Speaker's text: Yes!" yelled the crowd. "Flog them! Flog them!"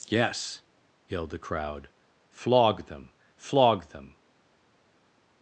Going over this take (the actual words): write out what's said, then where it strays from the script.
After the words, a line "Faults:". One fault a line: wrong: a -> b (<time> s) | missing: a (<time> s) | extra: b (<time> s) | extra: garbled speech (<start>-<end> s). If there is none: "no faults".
Yes!" yelled the crowd. "Flog them! Flog them!"
Faults:
no faults